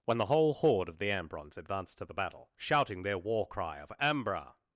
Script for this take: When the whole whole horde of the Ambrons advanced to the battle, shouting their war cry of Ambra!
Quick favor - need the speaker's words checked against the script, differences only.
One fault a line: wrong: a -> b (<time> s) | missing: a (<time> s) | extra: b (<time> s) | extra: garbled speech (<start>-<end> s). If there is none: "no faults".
missing: whole (0.6 s)